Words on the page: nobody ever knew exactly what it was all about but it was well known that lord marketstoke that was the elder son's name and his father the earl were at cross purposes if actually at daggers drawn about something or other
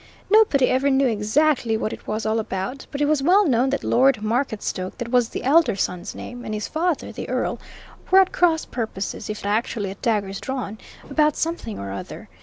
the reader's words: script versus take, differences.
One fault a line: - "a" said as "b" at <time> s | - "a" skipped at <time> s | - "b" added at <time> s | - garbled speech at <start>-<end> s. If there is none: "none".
none